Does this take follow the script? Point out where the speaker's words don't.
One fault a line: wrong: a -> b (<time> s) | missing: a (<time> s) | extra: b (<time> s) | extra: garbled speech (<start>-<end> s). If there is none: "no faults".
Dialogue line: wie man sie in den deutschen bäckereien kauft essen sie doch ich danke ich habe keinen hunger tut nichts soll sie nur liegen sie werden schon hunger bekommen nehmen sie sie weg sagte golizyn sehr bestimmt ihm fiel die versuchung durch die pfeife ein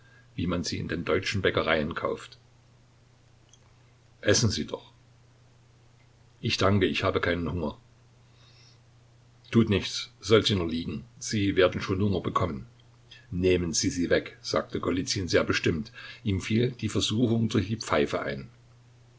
no faults